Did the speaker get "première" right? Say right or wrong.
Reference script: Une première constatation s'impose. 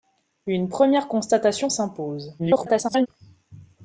right